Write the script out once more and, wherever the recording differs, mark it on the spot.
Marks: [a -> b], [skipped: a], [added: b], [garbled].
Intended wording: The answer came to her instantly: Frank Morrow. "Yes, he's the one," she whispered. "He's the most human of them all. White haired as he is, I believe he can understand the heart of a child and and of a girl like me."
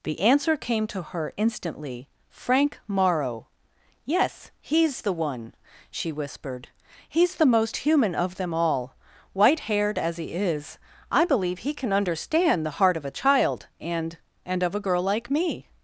The answer came to her instantly: Frank Morrow. "Yes, he's the one," she whispered. "He's the most human of them all. White haired as he is, I believe he can understand the heart of a child and and of a girl like me."